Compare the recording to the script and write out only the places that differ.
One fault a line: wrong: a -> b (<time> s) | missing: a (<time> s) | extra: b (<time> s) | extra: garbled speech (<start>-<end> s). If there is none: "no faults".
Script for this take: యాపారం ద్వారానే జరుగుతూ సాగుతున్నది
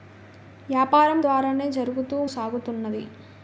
no faults